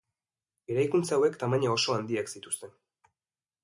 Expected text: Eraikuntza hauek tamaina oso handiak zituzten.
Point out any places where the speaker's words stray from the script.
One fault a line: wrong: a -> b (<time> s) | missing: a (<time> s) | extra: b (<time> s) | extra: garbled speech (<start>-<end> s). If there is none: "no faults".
no faults